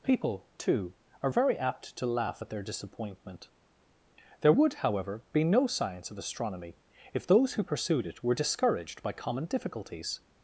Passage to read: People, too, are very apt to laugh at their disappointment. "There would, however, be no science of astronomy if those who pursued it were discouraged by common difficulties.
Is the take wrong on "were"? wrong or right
right